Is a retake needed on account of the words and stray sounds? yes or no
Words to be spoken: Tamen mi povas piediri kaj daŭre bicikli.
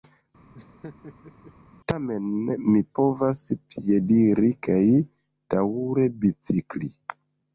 yes